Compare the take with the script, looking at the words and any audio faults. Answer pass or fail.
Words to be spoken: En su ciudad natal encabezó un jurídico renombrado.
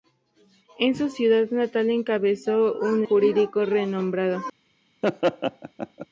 fail